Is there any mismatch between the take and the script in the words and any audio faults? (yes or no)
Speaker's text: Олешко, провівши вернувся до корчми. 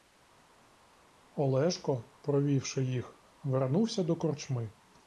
yes